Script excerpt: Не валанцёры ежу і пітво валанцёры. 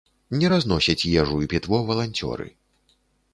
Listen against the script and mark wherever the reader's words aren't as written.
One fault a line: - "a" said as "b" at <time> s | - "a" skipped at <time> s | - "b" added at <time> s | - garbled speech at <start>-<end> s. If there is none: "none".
- "валанцёры" said as "разносяць" at 0.5 s